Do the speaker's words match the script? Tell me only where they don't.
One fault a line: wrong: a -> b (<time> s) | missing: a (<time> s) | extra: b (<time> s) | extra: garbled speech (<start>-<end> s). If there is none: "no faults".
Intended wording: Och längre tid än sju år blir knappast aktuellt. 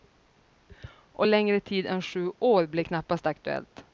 no faults